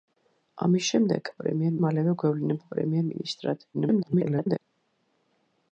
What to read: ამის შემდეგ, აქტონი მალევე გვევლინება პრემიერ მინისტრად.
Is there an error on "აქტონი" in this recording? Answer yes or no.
yes